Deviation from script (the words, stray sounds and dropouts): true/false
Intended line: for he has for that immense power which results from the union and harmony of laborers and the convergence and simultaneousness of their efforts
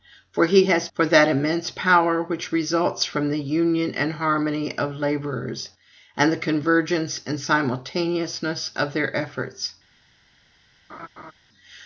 true